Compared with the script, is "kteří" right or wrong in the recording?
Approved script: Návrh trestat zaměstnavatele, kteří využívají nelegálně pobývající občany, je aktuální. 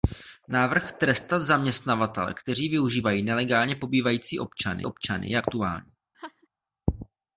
right